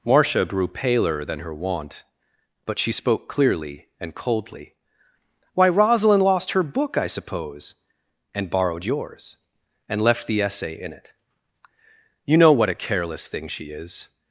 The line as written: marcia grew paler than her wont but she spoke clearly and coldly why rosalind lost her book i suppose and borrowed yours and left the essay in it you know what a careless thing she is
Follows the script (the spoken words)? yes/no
yes